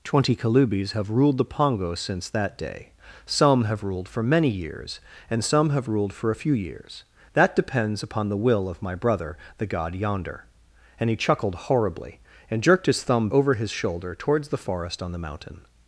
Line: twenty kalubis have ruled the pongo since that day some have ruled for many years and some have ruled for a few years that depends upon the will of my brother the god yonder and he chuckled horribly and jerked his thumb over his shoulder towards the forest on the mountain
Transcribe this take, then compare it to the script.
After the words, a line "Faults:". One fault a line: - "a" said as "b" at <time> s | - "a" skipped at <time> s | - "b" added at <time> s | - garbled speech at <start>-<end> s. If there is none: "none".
twenty kalubis have ruled the pongo since that day some have ruled for many years and some have ruled for a few years that depends upon the will of my brother the god yonder and he chuckled horribly and jerked his thumb over his shoulder towards the forest on the mountain
Faults:
none